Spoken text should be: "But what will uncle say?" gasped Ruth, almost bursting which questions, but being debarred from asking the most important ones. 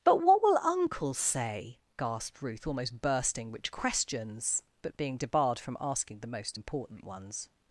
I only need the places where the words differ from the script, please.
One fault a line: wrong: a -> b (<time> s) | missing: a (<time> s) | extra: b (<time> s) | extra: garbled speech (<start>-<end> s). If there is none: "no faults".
no faults